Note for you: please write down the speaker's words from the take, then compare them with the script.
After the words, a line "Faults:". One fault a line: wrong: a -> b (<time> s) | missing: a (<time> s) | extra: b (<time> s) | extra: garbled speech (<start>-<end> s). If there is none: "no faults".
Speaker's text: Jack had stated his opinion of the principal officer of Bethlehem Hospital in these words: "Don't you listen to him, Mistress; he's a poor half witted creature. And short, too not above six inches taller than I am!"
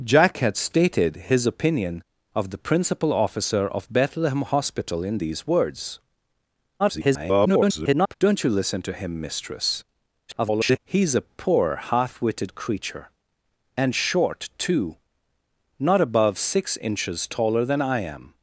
Jack had stated his opinion of the principal officer of Bethlehem Hospital in these words: [garbled] "Don't you listen to him, Mistress; [garbled] he's a poor half witted creature. And short, too not above six inches taller than I am!"
Faults:
extra: garbled speech (6.8-8.1 s)
extra: garbled speech (10.3-10.8 s)